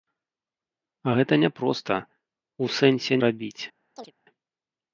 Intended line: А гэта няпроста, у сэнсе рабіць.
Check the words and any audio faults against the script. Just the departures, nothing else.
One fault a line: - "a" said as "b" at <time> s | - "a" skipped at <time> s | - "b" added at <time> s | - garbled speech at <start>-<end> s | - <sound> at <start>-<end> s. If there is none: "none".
- chirp at 4.0-4.1 s